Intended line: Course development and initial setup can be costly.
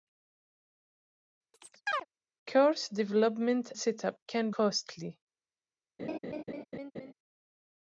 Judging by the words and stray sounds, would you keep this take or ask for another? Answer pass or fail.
fail